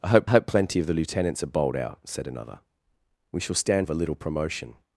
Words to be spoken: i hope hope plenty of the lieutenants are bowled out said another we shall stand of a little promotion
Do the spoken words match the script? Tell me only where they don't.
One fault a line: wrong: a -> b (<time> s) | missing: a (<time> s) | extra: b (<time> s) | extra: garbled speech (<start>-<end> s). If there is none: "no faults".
no faults